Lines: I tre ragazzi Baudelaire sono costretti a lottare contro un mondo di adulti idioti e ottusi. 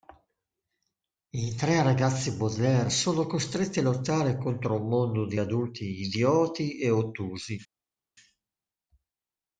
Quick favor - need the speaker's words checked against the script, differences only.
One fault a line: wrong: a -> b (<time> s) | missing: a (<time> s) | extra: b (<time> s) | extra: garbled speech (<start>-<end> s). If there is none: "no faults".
no faults